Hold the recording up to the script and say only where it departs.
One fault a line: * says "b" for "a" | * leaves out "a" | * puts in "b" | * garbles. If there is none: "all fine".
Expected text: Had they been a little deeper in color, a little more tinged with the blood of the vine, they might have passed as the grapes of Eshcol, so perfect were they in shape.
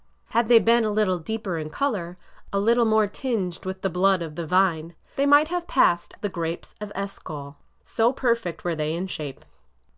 * leaves out "as"